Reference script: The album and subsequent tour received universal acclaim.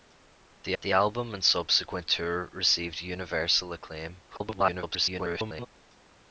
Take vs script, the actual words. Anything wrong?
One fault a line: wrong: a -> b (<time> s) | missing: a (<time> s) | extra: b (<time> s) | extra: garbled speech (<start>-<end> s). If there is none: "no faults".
extra: the (0.8 s)
extra: garbled speech (4.3-5.7 s)